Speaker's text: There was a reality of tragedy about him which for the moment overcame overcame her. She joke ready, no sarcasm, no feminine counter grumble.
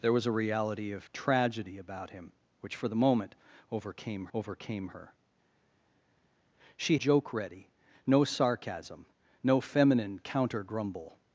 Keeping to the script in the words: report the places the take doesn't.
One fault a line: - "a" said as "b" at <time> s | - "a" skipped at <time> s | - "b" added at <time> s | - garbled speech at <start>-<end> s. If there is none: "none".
none